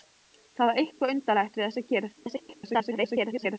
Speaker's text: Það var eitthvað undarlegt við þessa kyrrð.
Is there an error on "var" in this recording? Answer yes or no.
no